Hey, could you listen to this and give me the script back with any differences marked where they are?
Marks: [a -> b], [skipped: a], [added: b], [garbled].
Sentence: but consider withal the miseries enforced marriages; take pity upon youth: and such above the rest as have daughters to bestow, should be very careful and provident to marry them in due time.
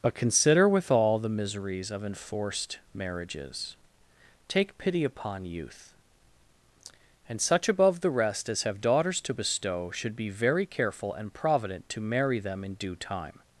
but consider withal the miseries [added: of] enforced marriages; take pity upon youth: and such above the rest as have daughters to bestow, should be very careful and provident to marry them in due time.